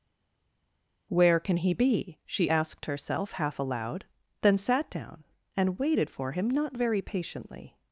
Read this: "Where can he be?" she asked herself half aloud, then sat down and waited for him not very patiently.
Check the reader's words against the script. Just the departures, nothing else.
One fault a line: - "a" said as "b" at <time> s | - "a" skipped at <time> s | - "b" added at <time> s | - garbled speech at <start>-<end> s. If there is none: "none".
none